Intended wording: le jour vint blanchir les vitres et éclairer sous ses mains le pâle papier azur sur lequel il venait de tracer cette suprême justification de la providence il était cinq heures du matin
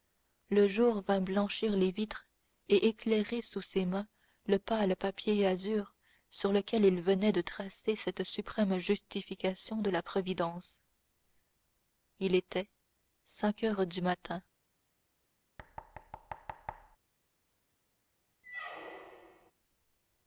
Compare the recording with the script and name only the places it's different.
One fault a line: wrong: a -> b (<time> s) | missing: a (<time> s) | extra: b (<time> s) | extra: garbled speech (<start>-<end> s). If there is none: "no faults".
no faults